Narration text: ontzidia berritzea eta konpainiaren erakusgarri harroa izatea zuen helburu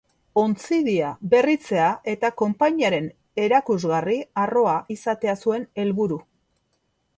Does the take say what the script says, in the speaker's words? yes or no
yes